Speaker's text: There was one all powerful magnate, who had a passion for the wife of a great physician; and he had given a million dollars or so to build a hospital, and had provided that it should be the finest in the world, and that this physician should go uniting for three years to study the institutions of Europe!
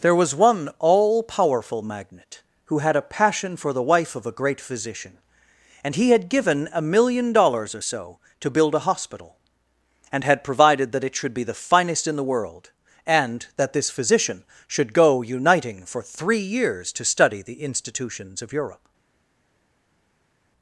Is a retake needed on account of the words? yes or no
no